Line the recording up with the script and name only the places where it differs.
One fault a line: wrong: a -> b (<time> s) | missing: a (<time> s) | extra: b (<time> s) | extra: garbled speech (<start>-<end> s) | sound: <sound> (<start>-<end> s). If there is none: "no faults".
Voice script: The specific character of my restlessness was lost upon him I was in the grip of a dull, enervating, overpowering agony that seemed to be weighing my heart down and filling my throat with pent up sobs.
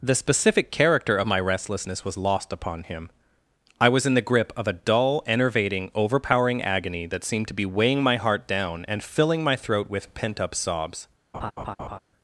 sound: laugh (11.3-12.0 s)